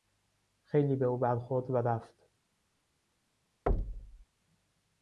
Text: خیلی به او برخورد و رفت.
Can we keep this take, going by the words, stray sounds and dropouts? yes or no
no